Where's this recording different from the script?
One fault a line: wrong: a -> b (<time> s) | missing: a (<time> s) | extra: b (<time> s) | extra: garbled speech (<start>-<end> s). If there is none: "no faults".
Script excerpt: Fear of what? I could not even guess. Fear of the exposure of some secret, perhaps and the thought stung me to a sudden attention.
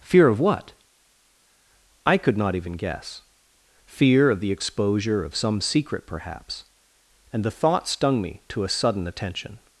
no faults